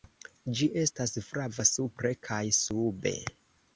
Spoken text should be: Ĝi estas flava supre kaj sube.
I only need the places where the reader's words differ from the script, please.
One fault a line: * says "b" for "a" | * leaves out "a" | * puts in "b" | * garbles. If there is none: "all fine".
all fine